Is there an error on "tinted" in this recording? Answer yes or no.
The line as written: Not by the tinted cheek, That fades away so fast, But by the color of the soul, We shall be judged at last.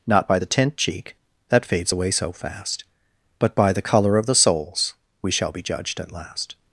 yes